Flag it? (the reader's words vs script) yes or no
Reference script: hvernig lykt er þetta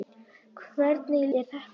yes